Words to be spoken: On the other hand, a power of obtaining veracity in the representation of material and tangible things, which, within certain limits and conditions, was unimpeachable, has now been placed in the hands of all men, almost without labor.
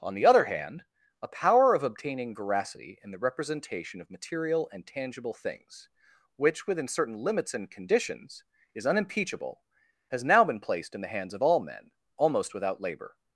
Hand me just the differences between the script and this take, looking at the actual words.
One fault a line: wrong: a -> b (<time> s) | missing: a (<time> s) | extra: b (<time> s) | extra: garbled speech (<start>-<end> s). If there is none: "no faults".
wrong: was -> is (8.7 s)